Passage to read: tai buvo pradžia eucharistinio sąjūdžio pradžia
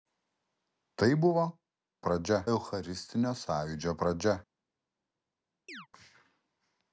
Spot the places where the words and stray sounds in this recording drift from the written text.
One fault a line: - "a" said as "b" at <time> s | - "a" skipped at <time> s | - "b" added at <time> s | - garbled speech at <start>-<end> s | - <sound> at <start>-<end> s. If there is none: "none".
- chirp at 5.7-5.9 s